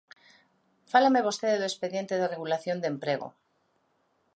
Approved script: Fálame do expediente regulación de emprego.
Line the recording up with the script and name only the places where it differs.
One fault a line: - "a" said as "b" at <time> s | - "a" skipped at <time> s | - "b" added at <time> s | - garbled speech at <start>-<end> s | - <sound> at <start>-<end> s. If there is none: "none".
- "vostede" added at 1.3 s
- "de" added at 2.2 s